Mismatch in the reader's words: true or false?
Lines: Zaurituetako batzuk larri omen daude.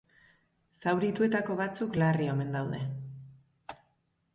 false